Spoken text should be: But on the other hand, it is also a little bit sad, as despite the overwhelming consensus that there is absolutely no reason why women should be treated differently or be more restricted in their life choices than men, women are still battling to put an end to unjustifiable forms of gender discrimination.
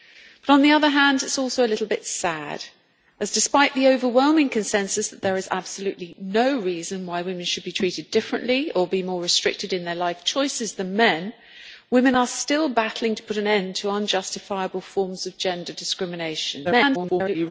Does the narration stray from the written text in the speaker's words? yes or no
yes